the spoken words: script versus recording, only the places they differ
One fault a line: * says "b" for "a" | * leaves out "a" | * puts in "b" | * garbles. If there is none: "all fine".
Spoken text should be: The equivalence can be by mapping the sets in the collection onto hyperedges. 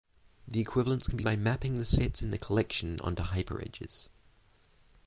all fine